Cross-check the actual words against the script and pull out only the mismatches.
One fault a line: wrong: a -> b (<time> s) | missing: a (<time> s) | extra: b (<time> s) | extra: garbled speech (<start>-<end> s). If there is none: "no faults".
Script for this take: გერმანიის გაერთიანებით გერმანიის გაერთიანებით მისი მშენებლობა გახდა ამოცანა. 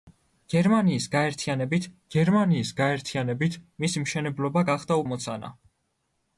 no faults